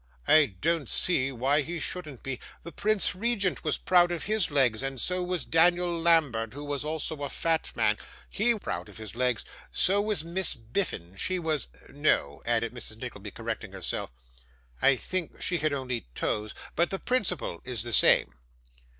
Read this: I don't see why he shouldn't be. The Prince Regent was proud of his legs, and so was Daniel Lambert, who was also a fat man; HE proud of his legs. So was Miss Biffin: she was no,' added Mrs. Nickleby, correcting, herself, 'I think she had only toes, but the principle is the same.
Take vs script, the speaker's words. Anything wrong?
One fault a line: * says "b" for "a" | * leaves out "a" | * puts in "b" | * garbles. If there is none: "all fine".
all fine